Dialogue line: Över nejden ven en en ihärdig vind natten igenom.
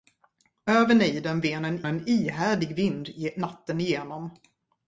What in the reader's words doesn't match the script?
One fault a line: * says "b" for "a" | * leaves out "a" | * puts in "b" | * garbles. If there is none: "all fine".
all fine